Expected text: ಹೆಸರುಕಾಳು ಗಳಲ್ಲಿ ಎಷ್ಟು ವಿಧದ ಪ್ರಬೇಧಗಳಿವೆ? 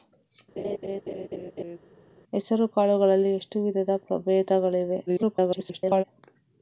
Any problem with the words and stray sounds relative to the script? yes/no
yes